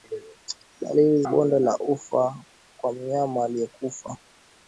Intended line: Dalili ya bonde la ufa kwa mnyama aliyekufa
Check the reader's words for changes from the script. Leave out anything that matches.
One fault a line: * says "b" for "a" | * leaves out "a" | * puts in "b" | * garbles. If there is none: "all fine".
all fine